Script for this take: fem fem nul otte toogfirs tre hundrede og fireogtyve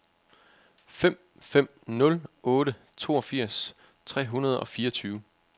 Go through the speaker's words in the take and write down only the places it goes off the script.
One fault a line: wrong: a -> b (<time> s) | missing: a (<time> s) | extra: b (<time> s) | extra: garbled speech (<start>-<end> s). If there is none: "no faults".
no faults